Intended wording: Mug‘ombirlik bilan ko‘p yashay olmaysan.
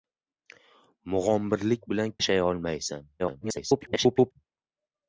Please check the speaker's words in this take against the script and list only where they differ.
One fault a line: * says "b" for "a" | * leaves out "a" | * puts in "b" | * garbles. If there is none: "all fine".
* leaves out "ko‘p"
* garbles